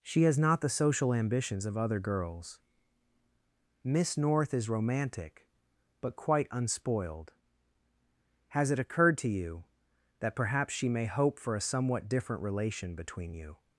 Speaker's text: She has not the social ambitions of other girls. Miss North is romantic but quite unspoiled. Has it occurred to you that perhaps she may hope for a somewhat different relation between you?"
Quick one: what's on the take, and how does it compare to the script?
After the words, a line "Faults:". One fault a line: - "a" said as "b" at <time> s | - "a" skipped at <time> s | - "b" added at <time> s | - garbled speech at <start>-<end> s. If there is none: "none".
She has not the social ambitions of other girls. Miss North is romantic but quite unspoiled. Has it occurred to you that perhaps she may hope for a somewhat different relation between you?"
Faults:
none